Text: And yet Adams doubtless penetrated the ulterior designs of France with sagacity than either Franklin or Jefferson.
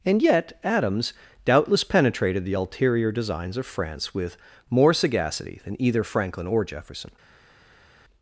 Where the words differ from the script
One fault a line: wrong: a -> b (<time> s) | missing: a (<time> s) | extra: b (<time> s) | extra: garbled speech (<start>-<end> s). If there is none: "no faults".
extra: more (4.7 s)